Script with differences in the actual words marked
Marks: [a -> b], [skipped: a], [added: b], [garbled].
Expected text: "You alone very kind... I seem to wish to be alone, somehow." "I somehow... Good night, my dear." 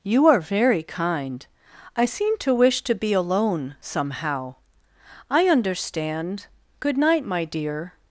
"You [alone -> are] very kind... I seem to wish to be alone, somehow." "I [somehow... -> understand] Good night, my dear."